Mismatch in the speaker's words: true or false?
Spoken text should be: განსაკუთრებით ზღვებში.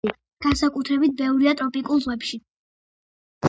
true